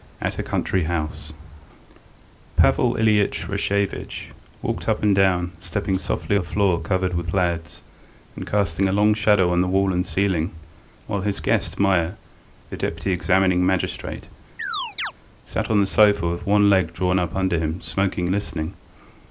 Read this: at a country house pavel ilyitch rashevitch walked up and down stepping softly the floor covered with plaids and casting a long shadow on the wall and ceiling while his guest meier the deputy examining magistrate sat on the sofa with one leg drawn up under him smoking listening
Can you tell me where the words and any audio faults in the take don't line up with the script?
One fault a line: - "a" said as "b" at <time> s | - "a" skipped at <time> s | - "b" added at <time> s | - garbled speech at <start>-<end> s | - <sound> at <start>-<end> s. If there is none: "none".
- chirp at 14.6-15.1 s